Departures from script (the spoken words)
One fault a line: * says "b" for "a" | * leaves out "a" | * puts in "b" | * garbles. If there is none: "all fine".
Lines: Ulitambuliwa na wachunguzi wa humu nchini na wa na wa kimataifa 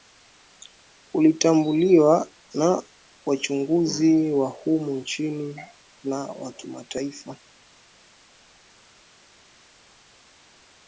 * leaves out "na wa"